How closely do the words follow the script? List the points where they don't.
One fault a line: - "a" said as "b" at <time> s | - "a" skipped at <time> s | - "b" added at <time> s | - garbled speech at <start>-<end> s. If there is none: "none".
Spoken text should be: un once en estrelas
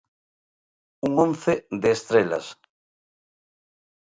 - "en" said as "de" at 1.7 s